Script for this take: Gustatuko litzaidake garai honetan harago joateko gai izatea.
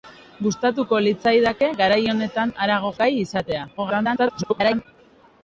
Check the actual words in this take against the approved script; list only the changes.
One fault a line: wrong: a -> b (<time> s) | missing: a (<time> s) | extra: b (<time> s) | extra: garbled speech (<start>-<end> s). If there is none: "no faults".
missing: joateko (2.9 s)
extra: garbled speech (3.8-4.9 s)